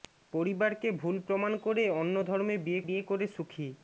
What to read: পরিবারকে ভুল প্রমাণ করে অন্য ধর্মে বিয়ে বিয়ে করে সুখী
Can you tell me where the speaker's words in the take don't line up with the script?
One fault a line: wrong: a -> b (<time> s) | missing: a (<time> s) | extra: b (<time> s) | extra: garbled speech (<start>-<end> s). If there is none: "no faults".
no faults